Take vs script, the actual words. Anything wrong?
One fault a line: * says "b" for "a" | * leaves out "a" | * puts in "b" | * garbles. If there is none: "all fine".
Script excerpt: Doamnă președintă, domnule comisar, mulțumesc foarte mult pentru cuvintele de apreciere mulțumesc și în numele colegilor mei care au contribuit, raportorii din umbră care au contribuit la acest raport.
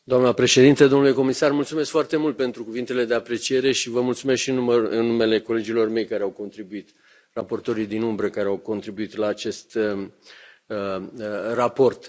* puts in "și vă"